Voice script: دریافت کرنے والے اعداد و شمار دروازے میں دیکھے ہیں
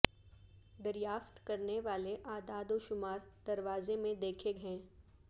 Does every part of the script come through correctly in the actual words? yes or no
yes